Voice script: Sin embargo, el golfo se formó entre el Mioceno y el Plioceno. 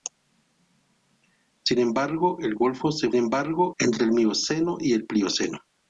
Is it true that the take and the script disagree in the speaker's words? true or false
true